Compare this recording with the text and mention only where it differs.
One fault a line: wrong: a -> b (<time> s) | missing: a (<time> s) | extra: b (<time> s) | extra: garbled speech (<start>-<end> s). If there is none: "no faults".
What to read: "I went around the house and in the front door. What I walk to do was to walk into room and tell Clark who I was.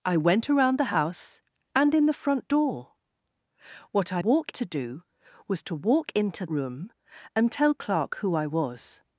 no faults